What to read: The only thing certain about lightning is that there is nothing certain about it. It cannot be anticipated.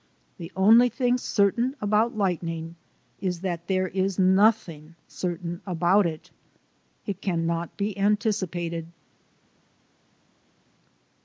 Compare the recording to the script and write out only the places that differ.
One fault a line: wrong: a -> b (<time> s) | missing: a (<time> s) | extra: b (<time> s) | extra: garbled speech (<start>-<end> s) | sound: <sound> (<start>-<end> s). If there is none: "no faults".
no faults